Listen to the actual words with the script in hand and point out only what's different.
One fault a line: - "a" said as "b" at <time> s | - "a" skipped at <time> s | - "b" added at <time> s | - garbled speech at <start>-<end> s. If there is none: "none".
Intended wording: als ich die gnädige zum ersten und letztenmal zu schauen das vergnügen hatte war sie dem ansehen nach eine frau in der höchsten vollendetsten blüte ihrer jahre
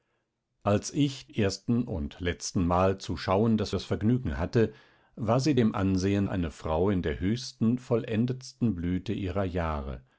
- "die gnädige zum" skipped at 1.3 s
- "das" added at 3.7 s
- "nach" skipped at 6.3 s